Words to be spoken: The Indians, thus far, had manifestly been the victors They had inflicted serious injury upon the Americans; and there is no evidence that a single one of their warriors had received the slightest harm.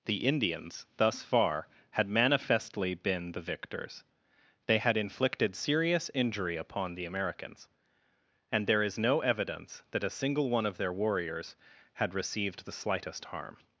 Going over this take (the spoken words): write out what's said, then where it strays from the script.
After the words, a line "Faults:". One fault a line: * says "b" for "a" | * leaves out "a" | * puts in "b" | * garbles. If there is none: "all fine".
The Indians, thus far, had manifestly been the victors They had inflicted serious injury upon the Americans; and there is no evidence that a single one of their warriors had received the slightest harm.
Faults:
all fine